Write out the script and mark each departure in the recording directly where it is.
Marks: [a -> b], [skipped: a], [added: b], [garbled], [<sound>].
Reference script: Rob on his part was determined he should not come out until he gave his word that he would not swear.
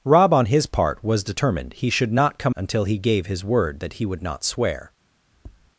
Rob on his part was determined he should not come [skipped: out] until he gave his word that he would not swear. [tap]